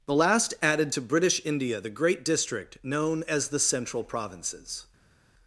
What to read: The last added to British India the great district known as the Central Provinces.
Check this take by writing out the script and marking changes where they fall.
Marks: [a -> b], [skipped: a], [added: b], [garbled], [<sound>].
The last added to British India the great district known as the Central Provinces.